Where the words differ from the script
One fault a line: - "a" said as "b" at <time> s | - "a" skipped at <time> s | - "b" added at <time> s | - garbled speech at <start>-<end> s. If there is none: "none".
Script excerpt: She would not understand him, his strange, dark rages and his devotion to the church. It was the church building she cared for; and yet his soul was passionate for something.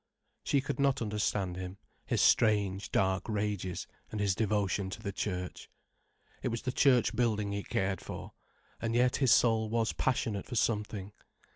- "would" said as "could" at 0.6 s
- "she" said as "he" at 7.5 s